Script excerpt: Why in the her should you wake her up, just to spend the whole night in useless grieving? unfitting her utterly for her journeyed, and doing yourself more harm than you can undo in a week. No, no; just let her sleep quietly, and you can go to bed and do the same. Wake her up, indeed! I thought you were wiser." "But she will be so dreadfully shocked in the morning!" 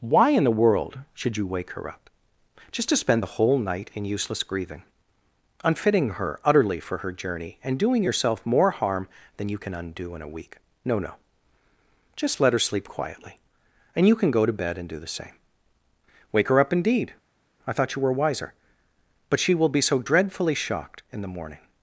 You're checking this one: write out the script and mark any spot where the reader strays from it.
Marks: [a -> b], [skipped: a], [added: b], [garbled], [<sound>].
Why in the [her -> world] should you wake her up, just to spend the whole night in useless grieving? unfitting her utterly for her [journeyed, -> journey] and doing yourself more harm than you can undo in a week. No, no; just let her sleep quietly, and you can go to bed and do the same. Wake her up, indeed! I thought you were wiser." "But she will be so dreadfully shocked in the morning!"